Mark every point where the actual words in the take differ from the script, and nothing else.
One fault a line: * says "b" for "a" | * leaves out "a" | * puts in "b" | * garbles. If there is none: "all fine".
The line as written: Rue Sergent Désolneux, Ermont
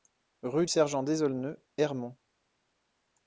all fine